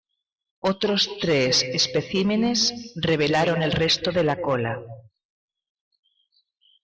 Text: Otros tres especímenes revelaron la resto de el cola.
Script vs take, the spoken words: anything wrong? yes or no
yes